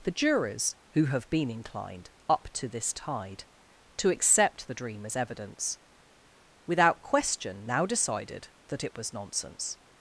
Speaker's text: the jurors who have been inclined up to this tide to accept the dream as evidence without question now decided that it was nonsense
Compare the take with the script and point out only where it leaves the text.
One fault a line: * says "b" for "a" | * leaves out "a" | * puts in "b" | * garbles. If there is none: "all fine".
all fine